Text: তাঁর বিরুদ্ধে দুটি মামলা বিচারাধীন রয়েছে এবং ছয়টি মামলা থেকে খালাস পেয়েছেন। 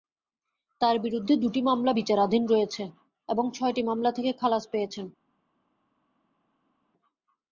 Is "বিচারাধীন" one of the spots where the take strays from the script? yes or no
no